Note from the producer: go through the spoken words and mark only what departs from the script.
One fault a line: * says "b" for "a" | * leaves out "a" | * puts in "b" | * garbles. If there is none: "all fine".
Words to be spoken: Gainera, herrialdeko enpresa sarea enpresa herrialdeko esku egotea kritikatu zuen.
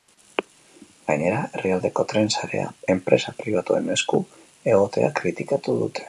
* says "tren" for "enpresa"
* says "pribatuen" for "herrialdeko"
* says "dute" for "zuen"